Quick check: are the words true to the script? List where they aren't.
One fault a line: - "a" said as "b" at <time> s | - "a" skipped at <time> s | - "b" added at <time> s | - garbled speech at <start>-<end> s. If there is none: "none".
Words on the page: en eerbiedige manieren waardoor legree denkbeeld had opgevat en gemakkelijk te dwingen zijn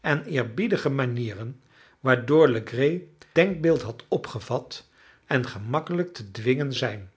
none